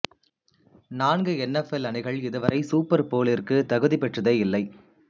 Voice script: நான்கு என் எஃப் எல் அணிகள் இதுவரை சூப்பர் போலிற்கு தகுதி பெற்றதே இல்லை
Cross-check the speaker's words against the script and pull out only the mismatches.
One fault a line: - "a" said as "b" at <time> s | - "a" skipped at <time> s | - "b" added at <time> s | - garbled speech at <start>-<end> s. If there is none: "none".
none